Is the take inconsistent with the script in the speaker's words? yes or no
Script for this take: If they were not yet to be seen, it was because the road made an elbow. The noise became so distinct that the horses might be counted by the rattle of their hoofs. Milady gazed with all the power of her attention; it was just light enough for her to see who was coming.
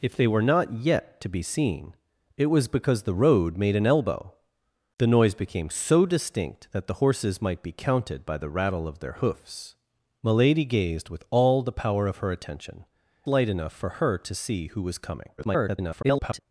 yes